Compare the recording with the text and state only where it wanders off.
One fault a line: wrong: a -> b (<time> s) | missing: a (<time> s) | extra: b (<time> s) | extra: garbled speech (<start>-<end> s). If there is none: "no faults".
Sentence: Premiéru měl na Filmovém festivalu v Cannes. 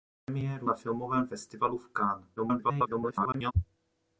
missing: měl (0.7 s)
extra: garbled speech (2.4-3.5 s)